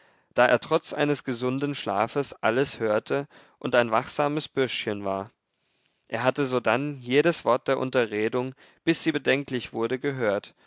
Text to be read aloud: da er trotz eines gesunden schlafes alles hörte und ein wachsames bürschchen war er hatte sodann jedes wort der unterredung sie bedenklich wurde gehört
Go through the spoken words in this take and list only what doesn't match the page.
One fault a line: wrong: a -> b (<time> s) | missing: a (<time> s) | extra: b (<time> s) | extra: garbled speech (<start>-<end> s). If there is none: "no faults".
extra: bis (8.8 s)